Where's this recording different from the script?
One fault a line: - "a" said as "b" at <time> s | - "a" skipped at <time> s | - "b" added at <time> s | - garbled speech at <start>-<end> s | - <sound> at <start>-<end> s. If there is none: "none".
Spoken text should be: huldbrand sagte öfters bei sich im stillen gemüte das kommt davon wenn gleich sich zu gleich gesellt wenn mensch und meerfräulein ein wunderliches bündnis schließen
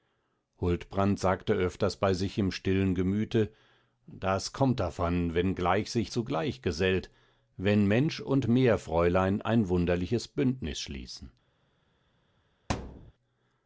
- thud at 12.7-13.1 s